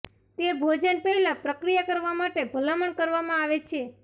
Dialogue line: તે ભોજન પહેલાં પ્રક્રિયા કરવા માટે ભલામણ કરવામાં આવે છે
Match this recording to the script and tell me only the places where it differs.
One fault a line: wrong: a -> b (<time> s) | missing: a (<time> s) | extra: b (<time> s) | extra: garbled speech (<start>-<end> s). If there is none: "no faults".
no faults